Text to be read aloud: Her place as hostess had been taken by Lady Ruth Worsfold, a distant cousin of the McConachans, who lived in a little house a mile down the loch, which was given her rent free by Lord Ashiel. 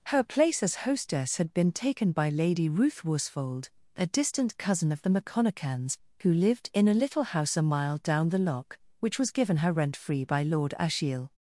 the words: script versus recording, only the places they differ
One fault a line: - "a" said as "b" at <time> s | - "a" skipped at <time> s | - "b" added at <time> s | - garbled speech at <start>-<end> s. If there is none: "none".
none